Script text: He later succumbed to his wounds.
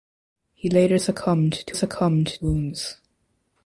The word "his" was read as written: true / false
false